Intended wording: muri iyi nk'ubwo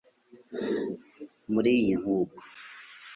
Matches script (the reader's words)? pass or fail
pass